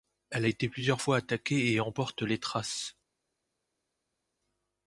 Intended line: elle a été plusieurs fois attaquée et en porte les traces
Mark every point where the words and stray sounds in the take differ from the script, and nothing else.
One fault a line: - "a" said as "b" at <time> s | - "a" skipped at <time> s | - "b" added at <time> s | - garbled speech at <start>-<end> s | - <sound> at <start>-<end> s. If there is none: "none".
none